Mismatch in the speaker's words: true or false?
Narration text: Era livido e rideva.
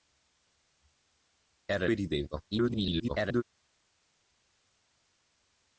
true